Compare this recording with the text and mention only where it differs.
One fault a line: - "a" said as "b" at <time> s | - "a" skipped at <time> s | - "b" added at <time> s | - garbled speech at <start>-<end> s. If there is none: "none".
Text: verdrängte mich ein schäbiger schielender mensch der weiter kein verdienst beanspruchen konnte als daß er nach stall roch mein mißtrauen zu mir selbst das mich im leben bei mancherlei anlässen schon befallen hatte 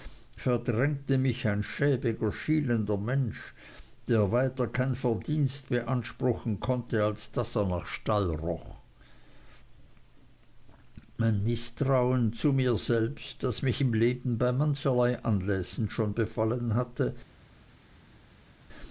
none